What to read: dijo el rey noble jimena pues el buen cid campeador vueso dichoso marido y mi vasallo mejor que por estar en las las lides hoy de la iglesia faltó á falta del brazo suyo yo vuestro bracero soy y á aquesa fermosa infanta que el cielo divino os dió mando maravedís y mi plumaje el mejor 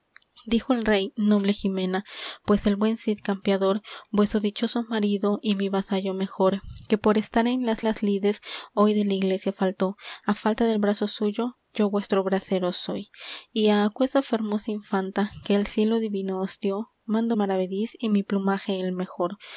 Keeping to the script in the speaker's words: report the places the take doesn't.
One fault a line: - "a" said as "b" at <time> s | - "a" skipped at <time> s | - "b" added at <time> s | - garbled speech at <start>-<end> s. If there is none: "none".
none